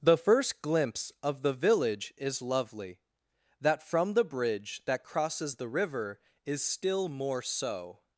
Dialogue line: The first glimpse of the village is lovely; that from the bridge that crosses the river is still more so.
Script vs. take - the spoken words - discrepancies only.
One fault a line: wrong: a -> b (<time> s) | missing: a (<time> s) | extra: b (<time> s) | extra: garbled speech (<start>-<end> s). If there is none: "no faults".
no faults